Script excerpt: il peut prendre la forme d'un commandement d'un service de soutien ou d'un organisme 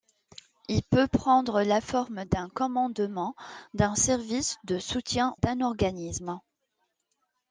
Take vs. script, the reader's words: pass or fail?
fail